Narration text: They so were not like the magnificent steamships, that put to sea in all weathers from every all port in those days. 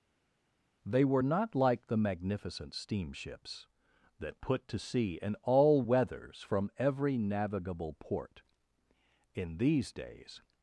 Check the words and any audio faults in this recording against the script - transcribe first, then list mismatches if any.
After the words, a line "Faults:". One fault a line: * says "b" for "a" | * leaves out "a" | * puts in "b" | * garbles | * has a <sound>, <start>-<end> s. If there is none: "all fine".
They were not like the magnificent steamships, that put to sea in all weathers from every navigable port in these days.
Faults:
* leaves out "so"
* says "navigable" for "all"
* says "these" for "those"